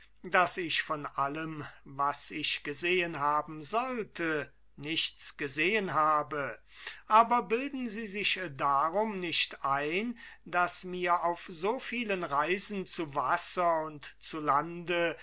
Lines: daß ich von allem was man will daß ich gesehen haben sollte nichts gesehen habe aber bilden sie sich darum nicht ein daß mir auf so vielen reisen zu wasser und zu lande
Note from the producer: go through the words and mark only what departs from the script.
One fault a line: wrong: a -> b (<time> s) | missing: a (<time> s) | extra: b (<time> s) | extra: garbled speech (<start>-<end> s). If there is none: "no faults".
missing: man will daß (2.3 s)